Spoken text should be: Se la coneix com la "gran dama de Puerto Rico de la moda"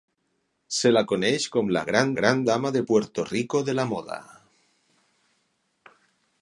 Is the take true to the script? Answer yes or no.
no